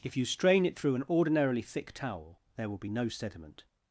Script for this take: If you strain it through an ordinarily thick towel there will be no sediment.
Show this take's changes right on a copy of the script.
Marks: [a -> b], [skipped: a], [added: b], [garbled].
If you strain it through an ordinarily thick towel there will be no sediment.